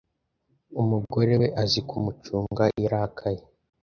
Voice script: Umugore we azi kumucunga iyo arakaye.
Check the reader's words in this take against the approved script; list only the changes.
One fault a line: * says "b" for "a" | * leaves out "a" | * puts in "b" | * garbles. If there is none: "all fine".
all fine